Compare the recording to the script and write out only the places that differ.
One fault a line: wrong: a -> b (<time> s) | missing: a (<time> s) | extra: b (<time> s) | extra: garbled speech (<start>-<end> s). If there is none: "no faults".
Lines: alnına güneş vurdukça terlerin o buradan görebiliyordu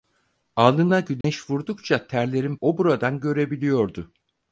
no faults